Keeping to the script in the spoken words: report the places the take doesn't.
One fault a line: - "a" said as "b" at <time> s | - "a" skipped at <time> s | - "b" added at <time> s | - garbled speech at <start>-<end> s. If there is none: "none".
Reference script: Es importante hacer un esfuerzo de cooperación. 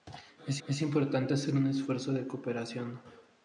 - "es" added at 0.7 s